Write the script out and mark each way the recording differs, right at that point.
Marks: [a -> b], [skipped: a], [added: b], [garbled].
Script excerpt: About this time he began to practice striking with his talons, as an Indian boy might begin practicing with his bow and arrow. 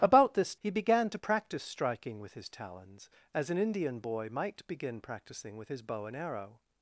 About this [skipped: time] he began to practice striking with his talons, as an Indian boy might begin practicing with his bow and arrow.